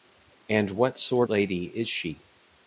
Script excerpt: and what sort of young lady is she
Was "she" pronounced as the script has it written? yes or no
yes